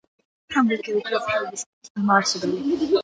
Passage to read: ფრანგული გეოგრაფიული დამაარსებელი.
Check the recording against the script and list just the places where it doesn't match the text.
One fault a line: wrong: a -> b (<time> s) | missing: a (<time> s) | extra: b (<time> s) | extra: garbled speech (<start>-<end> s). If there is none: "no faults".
extra: სკოლის (1.6 s)